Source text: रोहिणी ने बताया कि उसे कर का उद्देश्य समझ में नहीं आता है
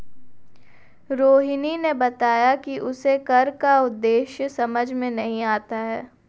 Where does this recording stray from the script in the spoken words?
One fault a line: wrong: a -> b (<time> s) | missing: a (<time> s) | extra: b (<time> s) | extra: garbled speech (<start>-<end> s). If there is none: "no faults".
no faults